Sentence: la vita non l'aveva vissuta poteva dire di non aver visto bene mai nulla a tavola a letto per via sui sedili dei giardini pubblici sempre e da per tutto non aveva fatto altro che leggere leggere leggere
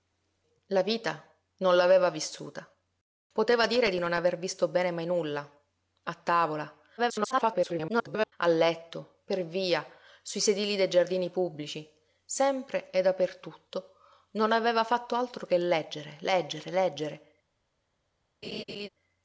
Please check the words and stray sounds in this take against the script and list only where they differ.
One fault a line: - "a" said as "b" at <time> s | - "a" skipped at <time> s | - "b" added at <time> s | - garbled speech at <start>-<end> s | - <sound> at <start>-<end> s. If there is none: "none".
- garbled speech at 7.0-8.3 s
- laugh at 18.4-18.9 s